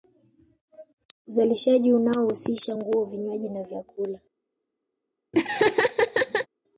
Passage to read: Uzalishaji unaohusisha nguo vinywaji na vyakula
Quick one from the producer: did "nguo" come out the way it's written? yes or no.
yes